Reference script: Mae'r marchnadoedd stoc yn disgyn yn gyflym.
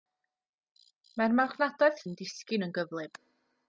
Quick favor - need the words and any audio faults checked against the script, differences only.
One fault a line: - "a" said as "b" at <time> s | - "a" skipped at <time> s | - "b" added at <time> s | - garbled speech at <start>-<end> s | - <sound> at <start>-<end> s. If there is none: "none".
- "stoc" skipped at 2.0 s